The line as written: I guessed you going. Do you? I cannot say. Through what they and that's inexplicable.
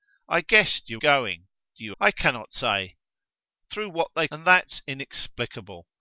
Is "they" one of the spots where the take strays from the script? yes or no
no